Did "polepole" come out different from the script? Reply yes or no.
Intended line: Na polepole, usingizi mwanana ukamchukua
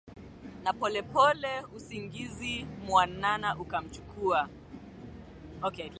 no